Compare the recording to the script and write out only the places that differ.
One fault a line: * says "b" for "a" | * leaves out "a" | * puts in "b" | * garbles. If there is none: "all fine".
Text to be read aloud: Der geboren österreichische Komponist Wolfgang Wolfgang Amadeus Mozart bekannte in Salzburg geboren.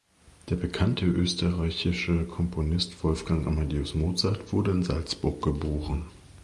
* says "bekannte" for "geboren"
* leaves out "Wolfgang"
* says "wurde" for "bekannte"